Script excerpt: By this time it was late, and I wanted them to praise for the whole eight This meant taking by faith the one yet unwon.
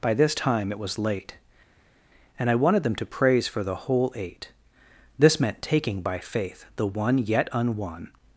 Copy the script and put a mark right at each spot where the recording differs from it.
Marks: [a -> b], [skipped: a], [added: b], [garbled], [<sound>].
By this time it was late, and I wanted them to praise for the whole eight This meant taking by faith the one yet unwon.